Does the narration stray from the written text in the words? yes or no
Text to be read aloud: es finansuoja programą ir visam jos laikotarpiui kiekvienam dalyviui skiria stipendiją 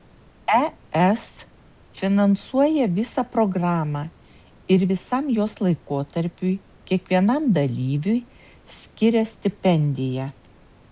yes